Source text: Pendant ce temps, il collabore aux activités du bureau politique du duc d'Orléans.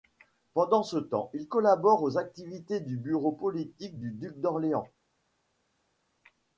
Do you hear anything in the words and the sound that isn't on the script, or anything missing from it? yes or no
no